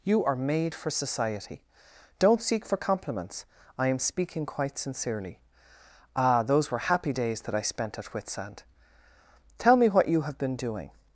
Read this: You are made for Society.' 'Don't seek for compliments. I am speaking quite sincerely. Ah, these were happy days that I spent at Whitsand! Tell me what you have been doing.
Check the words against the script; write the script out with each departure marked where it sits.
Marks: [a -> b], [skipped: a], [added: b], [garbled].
You are made for Society.' 'Don't seek for compliments. I am speaking quite sincerely. Ah, [these -> those] were happy days that I spent at Whitsand! Tell me what you have been doing.